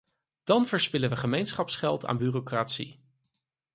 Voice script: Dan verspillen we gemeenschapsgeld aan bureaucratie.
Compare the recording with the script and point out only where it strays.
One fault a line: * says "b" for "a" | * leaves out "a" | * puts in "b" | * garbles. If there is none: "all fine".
all fine